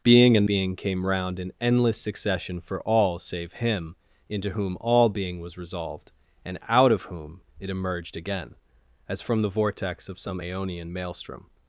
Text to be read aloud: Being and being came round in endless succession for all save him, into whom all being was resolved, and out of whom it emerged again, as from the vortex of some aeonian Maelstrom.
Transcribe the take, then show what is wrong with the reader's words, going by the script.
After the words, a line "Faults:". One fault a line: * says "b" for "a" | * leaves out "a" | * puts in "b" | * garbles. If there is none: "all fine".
Being and being came round in endless succession for all save him, into whom all being was resolved, and out of whom it emerged again, as from the vortex of some aeonian Maelstrom.
Faults:
all fine